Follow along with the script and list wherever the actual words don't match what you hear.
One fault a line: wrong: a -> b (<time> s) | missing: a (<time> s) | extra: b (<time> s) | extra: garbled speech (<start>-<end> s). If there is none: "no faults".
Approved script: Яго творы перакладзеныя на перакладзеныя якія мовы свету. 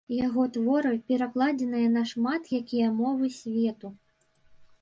wrong: перакладзеныя -> шмат (2.1 s)